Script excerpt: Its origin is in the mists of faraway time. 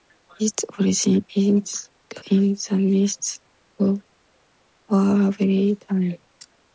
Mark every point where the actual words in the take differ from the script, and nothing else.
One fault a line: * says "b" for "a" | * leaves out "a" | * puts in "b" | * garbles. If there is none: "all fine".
all fine